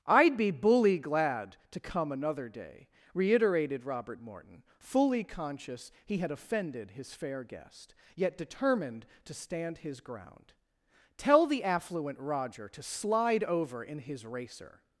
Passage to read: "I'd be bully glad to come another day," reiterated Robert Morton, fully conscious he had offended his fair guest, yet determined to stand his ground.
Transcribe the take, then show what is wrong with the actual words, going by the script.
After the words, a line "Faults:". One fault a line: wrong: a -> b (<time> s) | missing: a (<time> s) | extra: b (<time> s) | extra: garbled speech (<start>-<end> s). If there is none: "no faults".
"I'd be bully glad to come another day," reiterated Robert Morton, fully conscious he had offended his fair guest, yet determined to stand his ground. "Tell the affluent Roger to slide over in his racer
Faults:
extra: Tell the affluent Roger to slide over in his racer (11.2 s)